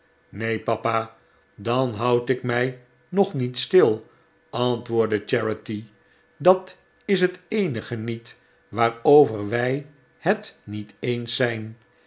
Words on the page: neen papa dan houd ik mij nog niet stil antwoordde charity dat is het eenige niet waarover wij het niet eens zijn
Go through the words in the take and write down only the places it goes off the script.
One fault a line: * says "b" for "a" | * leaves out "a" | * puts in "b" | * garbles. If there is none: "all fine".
all fine